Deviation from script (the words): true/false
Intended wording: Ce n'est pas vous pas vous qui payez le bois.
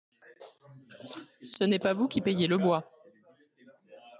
true